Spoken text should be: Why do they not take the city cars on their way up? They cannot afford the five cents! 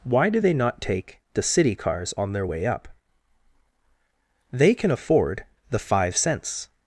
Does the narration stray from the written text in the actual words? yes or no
yes